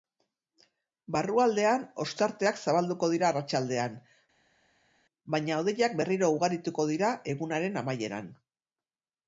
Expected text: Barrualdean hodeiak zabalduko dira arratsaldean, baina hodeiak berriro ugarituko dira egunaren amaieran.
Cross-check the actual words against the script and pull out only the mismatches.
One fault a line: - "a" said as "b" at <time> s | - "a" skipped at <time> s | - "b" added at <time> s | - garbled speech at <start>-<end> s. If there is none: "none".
- "hodeiak" said as "ostarteak" at 2.0 s